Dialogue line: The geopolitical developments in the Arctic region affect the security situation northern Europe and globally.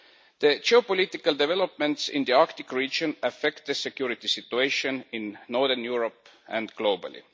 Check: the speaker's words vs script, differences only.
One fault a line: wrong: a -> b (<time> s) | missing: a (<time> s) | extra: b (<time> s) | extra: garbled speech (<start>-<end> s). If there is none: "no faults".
extra: in (5.1 s)